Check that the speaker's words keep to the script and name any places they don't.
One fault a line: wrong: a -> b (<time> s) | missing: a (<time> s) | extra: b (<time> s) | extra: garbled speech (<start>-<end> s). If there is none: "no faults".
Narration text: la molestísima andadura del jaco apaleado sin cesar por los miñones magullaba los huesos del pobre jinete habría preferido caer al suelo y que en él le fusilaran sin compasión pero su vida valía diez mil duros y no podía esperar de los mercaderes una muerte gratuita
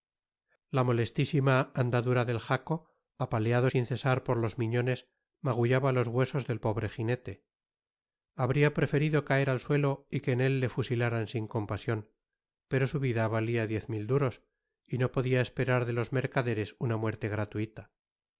no faults